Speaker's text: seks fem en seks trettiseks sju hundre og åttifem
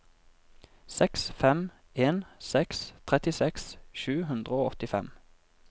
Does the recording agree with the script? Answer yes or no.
yes